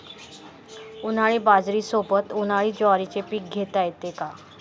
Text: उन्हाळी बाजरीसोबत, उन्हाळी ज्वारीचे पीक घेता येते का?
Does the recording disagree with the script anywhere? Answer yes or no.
no